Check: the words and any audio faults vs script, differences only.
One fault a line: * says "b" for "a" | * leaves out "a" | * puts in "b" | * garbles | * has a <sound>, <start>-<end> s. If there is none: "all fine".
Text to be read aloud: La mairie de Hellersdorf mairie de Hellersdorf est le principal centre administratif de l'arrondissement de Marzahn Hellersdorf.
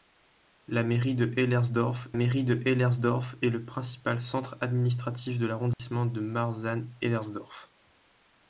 * has a dropout, 5.7-5.8 s